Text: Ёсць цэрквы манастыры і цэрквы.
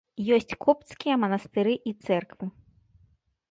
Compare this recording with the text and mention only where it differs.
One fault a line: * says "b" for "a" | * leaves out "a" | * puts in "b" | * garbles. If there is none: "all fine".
* says "копцкія" for "цэрквы"